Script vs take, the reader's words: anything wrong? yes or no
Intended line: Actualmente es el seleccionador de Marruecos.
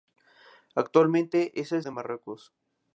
yes